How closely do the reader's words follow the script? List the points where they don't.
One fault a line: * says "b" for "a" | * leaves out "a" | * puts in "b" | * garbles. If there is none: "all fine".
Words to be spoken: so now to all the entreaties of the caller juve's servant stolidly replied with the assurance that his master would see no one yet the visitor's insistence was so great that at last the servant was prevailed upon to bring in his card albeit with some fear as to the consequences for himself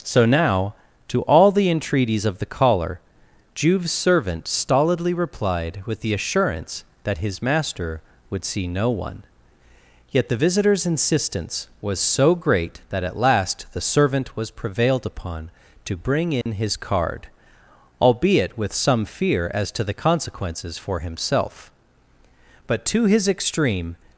* puts in "but to his extreme"